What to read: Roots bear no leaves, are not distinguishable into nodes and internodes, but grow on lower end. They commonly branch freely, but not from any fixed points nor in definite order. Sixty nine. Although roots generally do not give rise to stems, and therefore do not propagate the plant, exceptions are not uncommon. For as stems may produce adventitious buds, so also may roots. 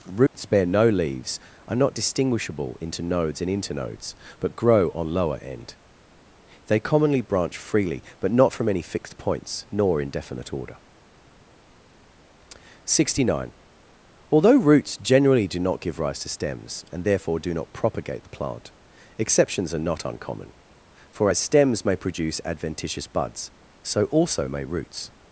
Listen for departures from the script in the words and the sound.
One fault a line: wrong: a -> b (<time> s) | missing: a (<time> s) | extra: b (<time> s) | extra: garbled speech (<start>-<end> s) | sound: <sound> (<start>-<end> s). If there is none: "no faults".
sound: dropout (0.3-0.3 s)